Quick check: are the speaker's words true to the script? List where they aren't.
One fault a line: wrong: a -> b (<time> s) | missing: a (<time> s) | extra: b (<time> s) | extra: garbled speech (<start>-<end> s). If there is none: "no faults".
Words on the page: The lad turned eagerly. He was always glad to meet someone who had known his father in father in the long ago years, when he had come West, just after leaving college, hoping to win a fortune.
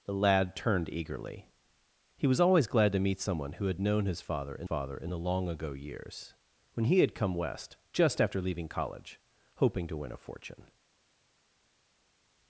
no faults